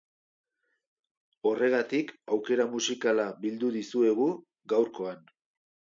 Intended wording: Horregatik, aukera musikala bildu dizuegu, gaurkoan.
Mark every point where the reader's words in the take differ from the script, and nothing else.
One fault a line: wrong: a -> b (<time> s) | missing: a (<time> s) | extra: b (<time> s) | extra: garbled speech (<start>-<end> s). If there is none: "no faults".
no faults